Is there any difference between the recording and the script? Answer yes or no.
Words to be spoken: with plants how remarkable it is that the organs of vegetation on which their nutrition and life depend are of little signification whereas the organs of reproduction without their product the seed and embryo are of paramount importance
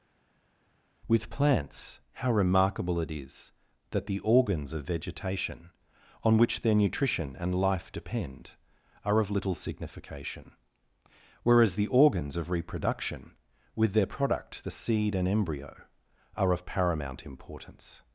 yes